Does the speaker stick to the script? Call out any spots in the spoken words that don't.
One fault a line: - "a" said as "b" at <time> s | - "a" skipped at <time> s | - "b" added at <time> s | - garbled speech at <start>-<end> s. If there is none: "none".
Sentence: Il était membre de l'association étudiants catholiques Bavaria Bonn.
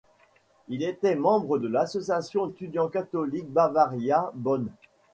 none